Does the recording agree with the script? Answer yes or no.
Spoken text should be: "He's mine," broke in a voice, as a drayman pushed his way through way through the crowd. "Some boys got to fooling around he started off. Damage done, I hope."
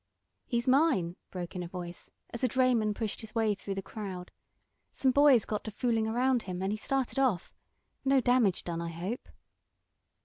no